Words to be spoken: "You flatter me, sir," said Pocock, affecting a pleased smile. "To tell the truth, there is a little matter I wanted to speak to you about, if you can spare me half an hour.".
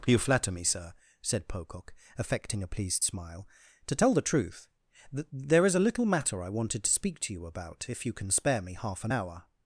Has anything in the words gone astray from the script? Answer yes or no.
yes